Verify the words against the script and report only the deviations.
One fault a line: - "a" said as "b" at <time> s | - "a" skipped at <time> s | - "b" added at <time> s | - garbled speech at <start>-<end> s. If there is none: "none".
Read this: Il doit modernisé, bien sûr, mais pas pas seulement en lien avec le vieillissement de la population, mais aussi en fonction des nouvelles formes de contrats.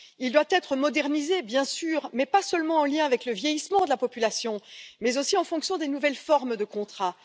- "être" added at 0.5 s
- "pas" skipped at 2.4 s